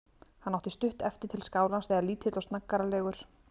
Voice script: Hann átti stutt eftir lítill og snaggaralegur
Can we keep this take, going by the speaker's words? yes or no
no